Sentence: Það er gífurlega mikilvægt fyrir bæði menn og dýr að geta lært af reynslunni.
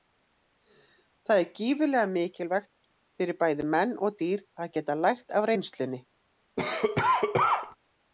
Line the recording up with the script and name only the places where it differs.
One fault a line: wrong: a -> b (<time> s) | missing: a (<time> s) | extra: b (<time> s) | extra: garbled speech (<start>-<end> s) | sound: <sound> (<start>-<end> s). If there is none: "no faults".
sound: cough (6.6-7.8 s)